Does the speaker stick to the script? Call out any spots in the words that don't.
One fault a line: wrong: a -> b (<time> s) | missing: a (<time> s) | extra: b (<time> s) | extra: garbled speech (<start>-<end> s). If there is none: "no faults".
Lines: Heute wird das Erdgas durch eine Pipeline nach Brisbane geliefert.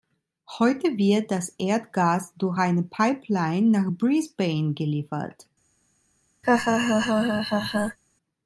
no faults